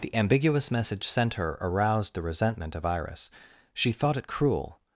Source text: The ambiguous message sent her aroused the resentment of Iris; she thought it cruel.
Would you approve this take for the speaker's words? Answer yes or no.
yes